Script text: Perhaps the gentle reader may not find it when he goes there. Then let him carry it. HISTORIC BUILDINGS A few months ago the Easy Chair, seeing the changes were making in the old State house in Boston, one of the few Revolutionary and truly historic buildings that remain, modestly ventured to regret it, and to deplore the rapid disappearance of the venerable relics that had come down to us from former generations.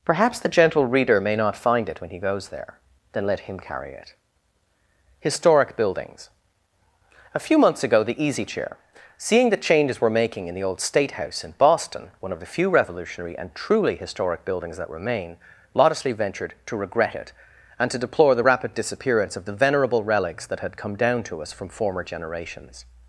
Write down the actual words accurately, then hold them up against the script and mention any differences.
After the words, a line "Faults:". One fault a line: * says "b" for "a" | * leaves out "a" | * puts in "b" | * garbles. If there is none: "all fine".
Perhaps the gentle reader may not find it when he goes there. Then let him carry it. HISTORIC BUILDINGS A few months ago the Easy Chair, seeing the changes were making in the old State house in Boston, one of the few Revolutionary and truly historic buildings that remain, modestly ventured to regret it, and to deplore the rapid disappearance of the venerable relics that had come down to us from former generations.
Faults:
all fine